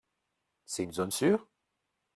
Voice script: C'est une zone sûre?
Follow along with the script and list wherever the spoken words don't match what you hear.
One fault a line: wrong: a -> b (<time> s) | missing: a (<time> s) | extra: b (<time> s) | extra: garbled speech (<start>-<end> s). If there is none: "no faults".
no faults